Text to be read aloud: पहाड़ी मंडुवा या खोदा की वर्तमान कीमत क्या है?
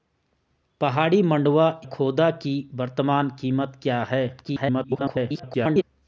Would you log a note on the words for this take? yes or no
yes